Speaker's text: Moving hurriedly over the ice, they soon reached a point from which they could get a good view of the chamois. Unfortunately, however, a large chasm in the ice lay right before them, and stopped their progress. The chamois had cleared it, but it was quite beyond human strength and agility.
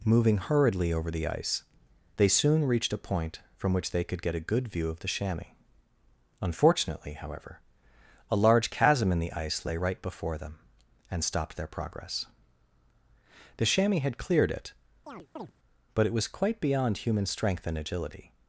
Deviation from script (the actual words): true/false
false